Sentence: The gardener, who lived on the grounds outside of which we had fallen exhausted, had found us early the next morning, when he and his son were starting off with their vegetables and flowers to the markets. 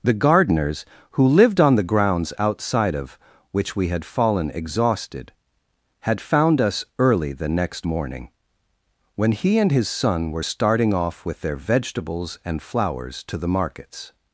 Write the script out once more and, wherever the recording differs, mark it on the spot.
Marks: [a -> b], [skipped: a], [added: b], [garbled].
The [gardener, -> gardeners] who lived on the grounds outside of which we had fallen exhausted, had found us early the next morning, when he and his son were starting off with their vegetables and flowers to the markets.